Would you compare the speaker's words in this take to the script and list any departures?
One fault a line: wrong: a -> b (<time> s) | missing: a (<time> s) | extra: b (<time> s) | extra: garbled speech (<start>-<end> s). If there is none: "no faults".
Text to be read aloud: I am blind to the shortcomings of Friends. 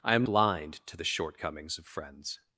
no faults